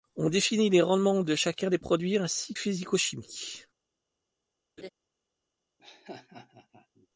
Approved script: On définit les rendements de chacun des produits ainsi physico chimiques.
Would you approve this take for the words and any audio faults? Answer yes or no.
no